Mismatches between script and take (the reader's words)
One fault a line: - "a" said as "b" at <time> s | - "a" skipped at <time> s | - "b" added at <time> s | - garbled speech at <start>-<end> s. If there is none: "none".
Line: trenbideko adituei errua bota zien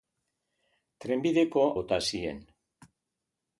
- "adituei errua" skipped at 1.6 s